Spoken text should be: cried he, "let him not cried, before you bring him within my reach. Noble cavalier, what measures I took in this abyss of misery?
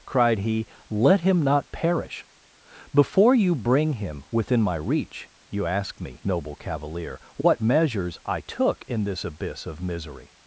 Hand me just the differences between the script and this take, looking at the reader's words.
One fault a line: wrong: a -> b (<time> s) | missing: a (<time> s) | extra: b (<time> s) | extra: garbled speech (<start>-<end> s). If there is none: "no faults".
wrong: cried -> perish (1.7 s)
extra: You ask me (5.5 s)